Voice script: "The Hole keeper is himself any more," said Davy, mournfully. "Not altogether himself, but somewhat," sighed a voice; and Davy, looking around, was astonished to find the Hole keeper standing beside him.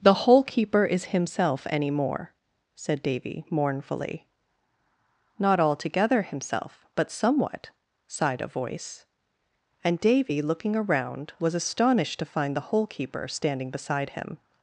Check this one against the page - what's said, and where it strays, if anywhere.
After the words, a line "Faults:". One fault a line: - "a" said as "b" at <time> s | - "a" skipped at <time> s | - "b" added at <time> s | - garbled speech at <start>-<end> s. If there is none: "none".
"The Hole keeper is himself any more," said Davy, mournfully. "Not altogether himself, but somewhat," sighed a voice; and Davy, looking around, was astonished to find the Hole keeper standing beside him.
Faults:
none